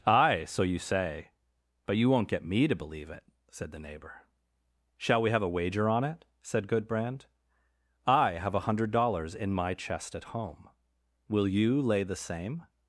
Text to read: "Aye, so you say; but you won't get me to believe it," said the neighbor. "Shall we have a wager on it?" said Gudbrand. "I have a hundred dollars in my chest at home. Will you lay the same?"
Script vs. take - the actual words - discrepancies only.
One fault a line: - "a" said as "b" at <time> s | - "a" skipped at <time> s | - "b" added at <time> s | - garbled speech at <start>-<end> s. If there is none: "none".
none